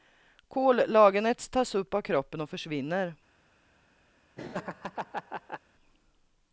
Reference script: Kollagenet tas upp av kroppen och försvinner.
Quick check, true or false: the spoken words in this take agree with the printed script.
true